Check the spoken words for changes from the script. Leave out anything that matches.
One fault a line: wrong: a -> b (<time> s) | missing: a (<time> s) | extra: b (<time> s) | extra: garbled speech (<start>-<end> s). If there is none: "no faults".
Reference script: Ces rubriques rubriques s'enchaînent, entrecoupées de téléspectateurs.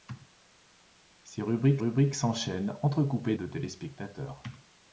no faults